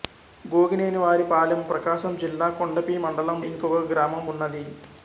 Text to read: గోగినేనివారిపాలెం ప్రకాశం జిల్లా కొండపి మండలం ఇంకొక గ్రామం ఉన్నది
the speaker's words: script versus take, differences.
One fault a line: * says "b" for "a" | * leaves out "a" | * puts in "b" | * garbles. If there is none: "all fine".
all fine